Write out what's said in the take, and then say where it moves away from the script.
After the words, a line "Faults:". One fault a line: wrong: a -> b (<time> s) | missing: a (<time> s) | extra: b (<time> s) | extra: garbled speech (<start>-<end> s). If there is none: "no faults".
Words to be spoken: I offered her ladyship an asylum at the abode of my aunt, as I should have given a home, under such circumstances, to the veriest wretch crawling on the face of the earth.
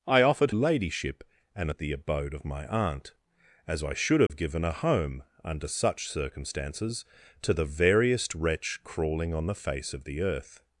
I offered ladyship an at the abode of my aunt, as I should have given a home, under such circumstances, to the veriest wretch crawling on the face of the earth.
Faults:
missing: her (0.5 s)
missing: asylum (1.7 s)